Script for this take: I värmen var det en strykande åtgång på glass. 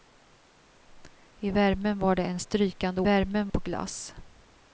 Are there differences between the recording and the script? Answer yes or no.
yes